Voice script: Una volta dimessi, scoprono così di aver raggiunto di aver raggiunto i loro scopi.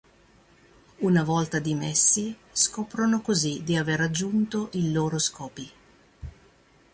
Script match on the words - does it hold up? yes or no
no